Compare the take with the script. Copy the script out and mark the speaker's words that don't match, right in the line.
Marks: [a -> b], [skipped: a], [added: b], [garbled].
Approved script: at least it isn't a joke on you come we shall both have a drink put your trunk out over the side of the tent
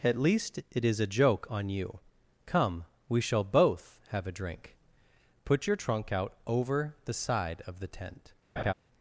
at least it [isn't -> is] a joke on you come we shall both have a drink put your trunk out over the side of the tent